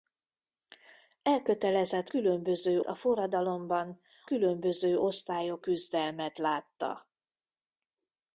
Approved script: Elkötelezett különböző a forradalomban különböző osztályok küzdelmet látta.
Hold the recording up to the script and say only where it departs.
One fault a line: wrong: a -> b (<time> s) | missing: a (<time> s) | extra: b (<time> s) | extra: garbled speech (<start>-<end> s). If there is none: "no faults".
no faults